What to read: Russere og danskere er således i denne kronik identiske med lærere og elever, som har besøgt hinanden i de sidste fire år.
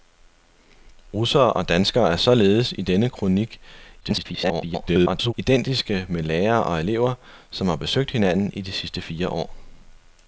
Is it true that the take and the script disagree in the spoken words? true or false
true